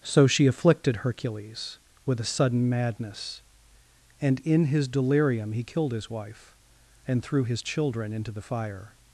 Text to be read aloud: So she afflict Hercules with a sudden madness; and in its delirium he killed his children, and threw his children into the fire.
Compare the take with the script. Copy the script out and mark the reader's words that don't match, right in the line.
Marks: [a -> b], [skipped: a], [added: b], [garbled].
So she [afflict -> afflicted] Hercules with a sudden madness; and in [its -> his] delirium he killed his [children, -> wife] and threw his children into the fire.